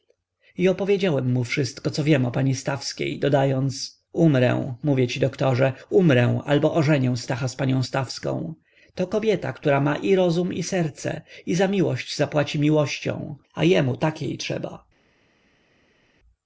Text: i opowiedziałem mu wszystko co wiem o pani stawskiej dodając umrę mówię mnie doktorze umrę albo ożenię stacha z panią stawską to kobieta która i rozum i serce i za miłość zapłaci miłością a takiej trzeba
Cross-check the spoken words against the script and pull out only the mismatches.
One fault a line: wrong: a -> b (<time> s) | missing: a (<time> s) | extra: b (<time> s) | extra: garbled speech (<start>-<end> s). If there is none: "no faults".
wrong: mnie -> ci (5.1 s)
extra: ma (9.8 s)
extra: jemu (13.6 s)